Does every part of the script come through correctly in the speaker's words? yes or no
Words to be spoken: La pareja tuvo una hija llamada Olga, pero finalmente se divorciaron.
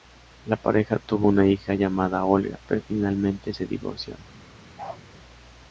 yes